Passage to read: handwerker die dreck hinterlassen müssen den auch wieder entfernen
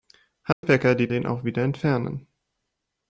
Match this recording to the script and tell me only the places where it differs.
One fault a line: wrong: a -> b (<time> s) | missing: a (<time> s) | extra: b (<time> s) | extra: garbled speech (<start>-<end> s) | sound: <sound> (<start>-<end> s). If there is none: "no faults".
sound: dropout (0.5-0.6 s)
missing: dreck hinterlassen müssen (1.1 s)